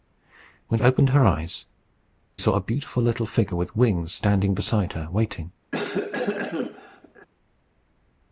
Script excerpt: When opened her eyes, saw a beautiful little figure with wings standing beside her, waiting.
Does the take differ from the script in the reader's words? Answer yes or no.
no